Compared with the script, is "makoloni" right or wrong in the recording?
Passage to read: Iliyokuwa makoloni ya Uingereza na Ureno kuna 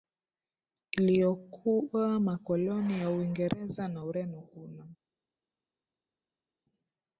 right